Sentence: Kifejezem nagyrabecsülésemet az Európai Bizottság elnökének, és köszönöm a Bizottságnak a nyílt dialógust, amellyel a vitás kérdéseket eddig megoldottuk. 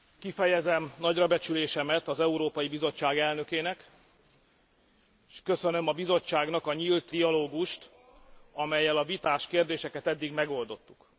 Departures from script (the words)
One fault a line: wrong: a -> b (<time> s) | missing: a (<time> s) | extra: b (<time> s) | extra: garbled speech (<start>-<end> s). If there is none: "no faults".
no faults